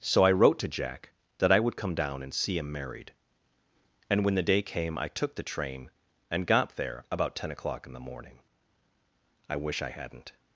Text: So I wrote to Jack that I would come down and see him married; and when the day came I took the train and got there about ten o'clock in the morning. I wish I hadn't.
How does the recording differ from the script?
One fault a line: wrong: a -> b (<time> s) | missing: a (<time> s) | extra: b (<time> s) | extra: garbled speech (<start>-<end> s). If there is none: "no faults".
no faults